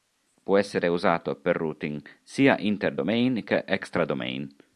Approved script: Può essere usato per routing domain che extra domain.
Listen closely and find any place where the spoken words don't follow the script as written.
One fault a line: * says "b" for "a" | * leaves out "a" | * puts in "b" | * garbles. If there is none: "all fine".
* puts in "sia inter"